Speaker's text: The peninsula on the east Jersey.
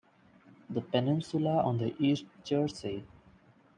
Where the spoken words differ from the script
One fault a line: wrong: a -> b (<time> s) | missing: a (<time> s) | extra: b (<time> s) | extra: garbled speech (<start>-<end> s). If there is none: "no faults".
no faults